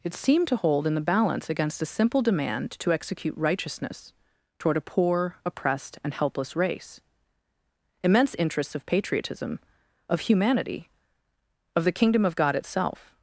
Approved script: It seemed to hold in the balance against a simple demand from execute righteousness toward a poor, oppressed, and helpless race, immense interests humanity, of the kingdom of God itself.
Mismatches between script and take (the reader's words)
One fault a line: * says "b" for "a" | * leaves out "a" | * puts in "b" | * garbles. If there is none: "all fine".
* says "to" for "from"
* puts in "of patriotism of"